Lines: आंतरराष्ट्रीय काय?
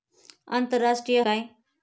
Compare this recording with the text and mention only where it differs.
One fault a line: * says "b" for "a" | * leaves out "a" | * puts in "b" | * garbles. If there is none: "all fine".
all fine